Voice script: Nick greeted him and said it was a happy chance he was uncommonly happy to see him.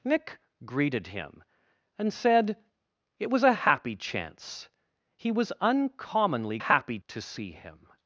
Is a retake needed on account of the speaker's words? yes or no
no